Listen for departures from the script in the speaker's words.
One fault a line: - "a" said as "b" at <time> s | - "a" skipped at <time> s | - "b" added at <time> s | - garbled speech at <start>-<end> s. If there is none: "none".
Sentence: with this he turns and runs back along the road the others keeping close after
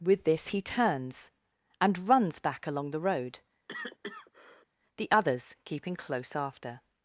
none